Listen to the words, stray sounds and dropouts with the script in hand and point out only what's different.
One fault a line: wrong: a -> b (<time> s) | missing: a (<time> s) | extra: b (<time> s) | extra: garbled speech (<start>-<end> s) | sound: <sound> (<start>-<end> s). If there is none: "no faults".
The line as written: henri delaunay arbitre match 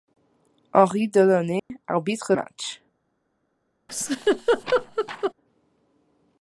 sound: dropout (1.6-1.7 s)
sound: laugh (3.9-5.3 s)